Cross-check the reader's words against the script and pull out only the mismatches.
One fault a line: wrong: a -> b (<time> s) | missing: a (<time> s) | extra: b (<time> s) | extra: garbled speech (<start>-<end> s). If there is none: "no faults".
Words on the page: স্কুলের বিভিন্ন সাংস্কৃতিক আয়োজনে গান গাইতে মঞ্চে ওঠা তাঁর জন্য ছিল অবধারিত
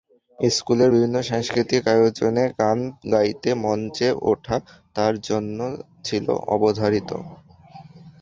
no faults